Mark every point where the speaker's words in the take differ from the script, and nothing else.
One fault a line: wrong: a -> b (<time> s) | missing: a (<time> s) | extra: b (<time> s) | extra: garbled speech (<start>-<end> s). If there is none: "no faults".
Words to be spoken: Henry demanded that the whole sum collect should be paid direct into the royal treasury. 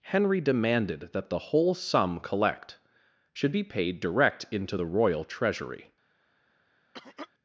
no faults